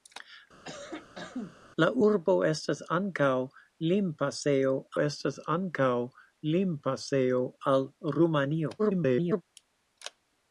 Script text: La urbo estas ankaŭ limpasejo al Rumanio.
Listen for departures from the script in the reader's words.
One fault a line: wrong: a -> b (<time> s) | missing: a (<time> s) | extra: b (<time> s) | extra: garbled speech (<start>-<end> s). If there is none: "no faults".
extra: estas ankaŭ limpasejo (5.0 s)
extra: garbled speech (8.8-9.4 s)